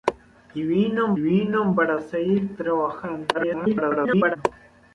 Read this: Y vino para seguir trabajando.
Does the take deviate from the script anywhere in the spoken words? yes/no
yes